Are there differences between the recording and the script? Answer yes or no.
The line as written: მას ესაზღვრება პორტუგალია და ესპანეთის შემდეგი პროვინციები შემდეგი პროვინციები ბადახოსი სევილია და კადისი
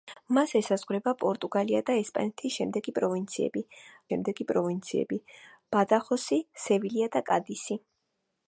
no